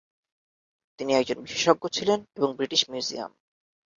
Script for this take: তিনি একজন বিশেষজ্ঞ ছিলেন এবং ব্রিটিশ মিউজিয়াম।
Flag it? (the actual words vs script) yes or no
no